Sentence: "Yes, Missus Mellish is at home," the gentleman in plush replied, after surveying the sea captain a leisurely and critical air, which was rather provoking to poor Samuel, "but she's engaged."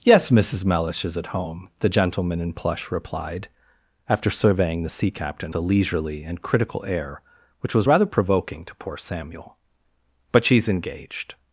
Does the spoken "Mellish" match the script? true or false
true